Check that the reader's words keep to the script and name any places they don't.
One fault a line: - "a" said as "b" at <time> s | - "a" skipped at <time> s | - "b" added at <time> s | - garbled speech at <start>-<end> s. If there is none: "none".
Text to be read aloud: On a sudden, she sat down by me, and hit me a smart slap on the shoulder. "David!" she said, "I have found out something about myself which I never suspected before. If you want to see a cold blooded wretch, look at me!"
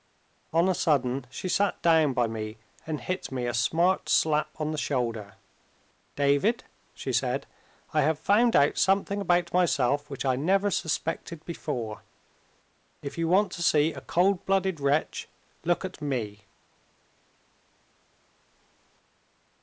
none